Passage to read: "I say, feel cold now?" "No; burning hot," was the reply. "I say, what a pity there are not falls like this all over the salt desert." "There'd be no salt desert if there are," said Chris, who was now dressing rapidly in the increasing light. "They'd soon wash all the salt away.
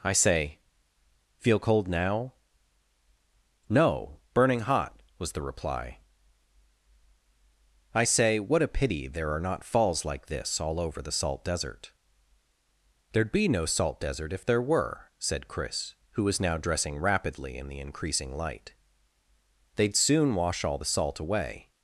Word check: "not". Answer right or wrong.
right